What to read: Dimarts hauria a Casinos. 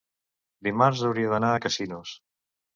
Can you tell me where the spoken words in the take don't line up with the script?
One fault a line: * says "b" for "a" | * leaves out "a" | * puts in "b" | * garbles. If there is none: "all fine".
* puts in "d'anar"